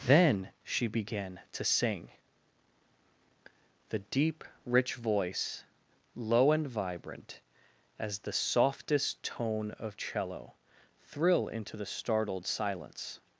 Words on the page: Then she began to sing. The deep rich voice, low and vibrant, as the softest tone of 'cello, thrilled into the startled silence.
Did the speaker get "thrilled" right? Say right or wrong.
wrong